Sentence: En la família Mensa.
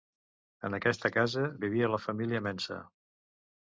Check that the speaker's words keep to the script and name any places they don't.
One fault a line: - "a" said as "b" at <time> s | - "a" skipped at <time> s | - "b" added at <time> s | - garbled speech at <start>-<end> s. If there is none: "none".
- "aquesta casa vivia" added at 0.8 s